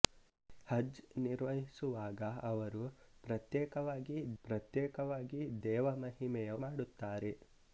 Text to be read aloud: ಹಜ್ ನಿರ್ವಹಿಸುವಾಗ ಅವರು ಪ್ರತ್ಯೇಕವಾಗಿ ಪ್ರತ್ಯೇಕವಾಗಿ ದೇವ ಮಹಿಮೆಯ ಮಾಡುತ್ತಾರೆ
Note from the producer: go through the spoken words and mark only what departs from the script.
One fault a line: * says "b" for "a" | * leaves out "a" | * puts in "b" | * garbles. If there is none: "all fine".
all fine